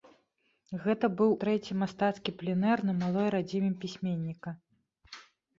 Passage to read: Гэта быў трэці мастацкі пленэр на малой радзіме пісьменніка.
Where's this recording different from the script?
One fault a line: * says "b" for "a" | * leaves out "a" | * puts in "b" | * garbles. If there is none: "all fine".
all fine